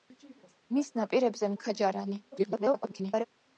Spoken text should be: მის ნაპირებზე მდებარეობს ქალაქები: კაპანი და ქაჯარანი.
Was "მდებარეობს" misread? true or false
true